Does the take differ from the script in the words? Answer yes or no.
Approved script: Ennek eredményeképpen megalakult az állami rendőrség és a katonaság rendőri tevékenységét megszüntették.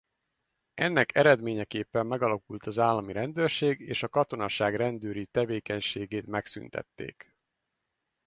no